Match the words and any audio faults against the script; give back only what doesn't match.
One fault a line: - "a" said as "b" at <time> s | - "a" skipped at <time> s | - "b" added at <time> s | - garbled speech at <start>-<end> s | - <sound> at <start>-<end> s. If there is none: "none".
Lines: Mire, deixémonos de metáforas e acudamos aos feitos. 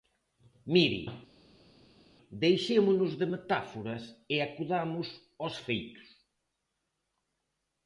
none